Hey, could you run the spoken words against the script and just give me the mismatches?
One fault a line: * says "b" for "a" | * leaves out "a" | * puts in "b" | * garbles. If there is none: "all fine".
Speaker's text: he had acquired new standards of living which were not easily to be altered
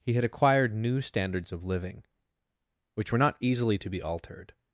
all fine